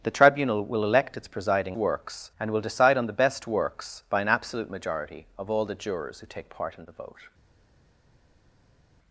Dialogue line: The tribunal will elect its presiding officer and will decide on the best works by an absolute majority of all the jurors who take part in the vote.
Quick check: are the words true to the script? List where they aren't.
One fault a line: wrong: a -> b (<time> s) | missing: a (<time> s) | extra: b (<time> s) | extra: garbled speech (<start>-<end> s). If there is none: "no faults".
wrong: officer -> works (1.7 s)